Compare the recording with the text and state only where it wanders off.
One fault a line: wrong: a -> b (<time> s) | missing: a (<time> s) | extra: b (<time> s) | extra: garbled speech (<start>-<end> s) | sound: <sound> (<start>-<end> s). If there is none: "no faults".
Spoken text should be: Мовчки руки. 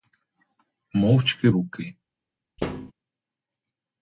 sound: thud (2.6-2.9 s)